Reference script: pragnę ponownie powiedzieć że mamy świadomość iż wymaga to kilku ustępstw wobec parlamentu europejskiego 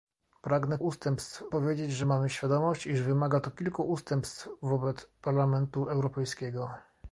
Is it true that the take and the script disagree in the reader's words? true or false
true